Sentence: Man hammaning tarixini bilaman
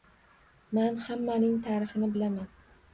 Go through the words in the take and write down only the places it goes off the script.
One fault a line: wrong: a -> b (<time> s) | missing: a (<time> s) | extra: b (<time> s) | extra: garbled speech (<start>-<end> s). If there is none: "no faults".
no faults